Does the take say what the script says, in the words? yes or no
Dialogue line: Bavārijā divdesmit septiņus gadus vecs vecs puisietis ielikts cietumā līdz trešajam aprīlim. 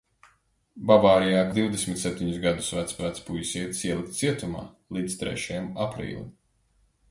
yes